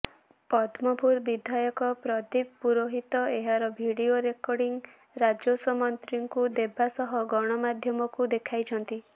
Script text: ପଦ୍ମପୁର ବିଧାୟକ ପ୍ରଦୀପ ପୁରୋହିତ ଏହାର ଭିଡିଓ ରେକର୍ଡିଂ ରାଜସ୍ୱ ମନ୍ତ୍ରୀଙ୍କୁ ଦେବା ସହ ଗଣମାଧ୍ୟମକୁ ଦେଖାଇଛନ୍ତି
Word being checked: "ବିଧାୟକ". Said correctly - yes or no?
yes